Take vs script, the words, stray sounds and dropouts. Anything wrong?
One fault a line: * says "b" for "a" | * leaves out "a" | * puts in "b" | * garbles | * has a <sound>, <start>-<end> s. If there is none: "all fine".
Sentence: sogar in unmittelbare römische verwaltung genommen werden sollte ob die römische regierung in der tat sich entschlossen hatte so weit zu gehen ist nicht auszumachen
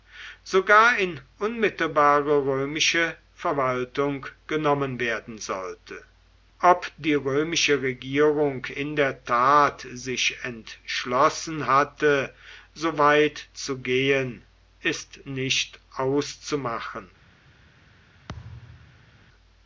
* has a thud, 18.3-19.1 s